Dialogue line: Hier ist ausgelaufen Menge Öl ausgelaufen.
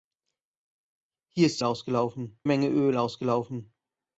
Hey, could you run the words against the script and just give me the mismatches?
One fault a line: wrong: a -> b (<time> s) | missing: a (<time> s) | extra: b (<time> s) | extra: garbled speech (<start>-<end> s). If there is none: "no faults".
no faults